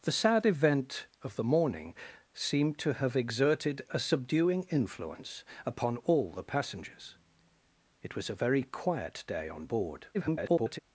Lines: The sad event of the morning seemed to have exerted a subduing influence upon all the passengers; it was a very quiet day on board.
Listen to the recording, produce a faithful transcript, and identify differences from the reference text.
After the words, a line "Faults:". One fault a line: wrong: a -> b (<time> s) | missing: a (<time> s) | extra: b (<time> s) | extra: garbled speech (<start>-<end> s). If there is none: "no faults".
The sad event of the morning seemed to have exerted a subduing influence upon all the passengers; it was a very quiet day on board. [garbled]
Faults:
extra: garbled speech (10.1-10.8 s)